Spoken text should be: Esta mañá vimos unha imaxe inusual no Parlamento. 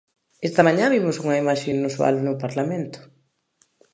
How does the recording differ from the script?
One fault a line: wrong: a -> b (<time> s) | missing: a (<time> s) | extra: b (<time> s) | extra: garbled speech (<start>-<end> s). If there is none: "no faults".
no faults